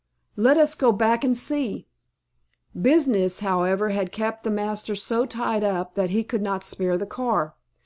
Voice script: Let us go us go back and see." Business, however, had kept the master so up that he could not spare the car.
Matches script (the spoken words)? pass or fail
fail